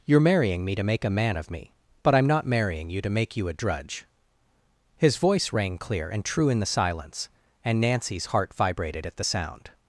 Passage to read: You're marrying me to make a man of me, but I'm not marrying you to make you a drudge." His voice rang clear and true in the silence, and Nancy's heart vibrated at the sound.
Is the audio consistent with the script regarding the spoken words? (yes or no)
yes